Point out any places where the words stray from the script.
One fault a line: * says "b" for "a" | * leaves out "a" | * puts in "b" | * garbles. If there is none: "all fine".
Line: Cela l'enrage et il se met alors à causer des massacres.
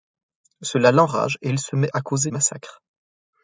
* leaves out "alors"
* leaves out "des"